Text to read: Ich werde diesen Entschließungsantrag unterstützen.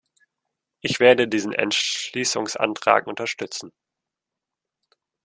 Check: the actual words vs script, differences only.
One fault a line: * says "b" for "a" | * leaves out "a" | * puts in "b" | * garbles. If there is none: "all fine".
all fine